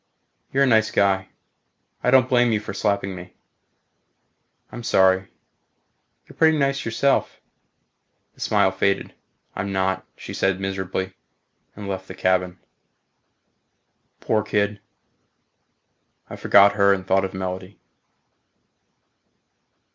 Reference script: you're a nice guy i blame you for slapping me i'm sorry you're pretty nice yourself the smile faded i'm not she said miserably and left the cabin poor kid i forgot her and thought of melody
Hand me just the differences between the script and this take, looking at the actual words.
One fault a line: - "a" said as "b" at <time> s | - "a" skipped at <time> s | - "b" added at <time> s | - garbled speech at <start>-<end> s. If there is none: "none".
- "don't" added at 2.1 s